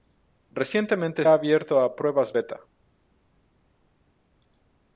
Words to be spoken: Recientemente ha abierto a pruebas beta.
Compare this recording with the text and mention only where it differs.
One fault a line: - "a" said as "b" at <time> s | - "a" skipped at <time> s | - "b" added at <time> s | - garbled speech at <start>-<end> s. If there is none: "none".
none